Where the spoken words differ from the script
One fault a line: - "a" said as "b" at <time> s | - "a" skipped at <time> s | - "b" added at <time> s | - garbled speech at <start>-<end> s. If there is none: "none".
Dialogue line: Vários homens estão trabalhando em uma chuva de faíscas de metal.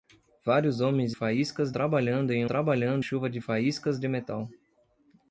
- "estão" said as "faíscas" at 1.1 s
- "uma" said as "trabalhando" at 2.5 s